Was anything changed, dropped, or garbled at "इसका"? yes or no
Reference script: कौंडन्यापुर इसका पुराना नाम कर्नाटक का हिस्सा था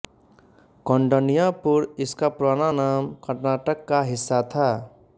no